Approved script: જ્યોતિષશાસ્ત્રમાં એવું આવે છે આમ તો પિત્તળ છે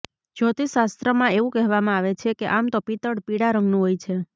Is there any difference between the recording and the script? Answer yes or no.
yes